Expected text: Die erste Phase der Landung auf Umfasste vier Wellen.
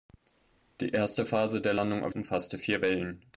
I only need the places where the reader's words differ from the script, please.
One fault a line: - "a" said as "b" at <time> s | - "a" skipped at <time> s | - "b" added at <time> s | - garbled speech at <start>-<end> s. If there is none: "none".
none